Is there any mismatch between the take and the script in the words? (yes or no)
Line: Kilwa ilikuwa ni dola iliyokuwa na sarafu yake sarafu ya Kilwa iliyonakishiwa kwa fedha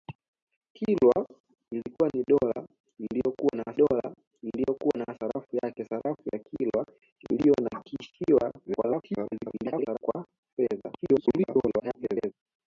yes